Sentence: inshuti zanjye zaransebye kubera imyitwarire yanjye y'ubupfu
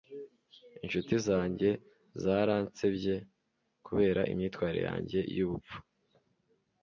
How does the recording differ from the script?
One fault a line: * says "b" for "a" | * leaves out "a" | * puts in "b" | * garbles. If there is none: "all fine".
all fine